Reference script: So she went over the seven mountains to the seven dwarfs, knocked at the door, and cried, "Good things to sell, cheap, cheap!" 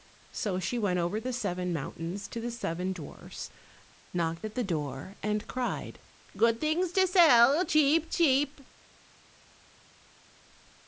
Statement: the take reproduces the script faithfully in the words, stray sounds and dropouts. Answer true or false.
true